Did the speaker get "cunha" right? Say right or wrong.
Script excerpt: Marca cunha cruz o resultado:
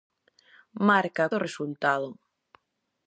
wrong